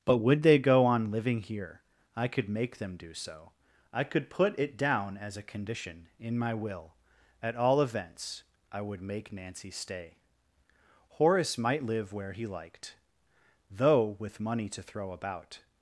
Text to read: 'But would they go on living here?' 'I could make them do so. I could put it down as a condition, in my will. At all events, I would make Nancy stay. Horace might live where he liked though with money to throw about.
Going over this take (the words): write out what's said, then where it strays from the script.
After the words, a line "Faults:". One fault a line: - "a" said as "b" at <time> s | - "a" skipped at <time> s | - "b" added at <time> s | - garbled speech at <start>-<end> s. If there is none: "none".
'But would they go on living here?' 'I could make them do so. I could put it down as a condition, in my will. At all events, I would make Nancy stay. Horace might live where he liked though with money to throw about.
Faults:
none